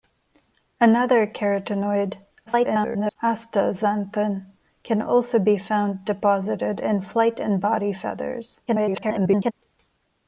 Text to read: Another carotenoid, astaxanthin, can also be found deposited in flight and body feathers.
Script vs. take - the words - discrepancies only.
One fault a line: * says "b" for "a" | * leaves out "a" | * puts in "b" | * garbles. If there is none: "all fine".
* garbles
* garbles